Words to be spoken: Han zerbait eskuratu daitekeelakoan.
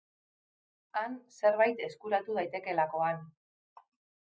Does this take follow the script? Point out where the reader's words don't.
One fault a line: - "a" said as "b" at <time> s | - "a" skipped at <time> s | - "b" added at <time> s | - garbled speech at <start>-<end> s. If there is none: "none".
none